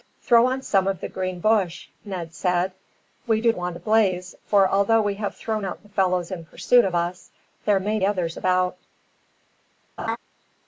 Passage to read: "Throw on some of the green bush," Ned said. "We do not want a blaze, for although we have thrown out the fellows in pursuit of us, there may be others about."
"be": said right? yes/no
no